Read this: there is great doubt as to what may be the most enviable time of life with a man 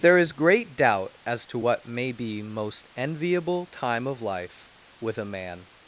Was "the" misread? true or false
true